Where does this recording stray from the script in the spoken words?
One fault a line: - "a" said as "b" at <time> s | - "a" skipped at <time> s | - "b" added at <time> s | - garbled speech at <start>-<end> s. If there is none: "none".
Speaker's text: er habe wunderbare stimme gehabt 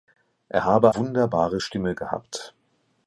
none